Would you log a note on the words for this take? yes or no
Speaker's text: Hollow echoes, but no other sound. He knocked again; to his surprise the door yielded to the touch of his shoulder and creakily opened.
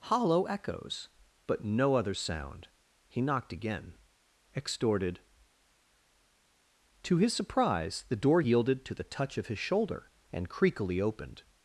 yes